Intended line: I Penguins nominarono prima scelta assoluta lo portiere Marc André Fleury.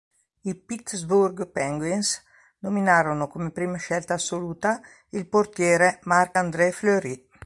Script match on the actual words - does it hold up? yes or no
no